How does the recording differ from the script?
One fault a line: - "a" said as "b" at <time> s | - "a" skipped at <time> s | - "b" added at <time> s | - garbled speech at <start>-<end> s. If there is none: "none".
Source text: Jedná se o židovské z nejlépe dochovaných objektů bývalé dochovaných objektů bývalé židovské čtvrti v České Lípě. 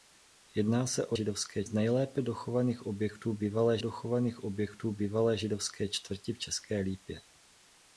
none